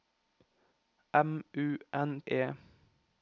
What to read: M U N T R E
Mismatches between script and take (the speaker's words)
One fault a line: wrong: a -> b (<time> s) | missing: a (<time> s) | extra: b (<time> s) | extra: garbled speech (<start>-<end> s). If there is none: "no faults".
missing: T R (2.2 s)